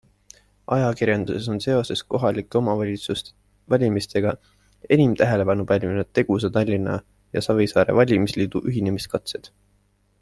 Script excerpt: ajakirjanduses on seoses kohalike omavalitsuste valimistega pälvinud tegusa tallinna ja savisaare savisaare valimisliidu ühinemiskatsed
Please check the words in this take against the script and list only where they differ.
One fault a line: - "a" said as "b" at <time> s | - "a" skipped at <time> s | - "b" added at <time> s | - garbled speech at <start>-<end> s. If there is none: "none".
- "enim tähelepanu" added at 5.0 s
- "savisaare" skipped at 8.0 s